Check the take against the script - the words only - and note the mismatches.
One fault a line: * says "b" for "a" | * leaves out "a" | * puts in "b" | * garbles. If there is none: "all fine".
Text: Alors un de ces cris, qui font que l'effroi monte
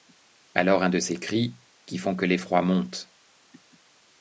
all fine